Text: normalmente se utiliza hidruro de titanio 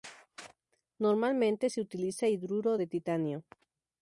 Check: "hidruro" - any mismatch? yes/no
no